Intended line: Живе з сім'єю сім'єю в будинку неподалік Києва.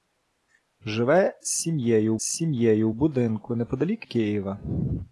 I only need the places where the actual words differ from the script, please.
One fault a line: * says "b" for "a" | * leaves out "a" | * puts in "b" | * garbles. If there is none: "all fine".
all fine